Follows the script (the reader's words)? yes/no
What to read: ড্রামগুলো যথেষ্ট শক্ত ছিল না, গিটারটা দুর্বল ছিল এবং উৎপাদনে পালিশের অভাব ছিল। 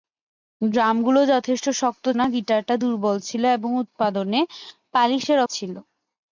no